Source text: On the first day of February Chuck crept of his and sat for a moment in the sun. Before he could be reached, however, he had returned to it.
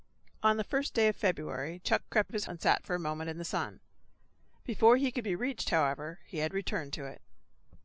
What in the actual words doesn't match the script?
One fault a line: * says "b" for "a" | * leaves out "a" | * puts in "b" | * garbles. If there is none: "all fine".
all fine